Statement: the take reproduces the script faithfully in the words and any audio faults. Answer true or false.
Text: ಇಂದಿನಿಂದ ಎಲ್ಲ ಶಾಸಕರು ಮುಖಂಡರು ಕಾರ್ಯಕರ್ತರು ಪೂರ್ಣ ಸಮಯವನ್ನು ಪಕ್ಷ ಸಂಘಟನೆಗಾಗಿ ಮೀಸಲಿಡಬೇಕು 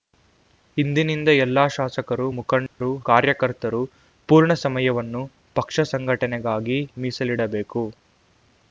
false